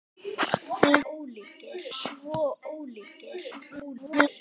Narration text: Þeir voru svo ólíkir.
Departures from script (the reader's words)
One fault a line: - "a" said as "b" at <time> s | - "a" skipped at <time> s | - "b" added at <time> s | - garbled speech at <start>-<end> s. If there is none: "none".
- "voru" said as "ólíkir" at 1.1 s
- garbled speech at 3.5-4.3 s